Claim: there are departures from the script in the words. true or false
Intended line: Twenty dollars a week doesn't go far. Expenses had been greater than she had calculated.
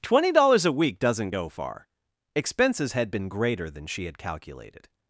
false